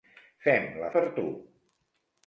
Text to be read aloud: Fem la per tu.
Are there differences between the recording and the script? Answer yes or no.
no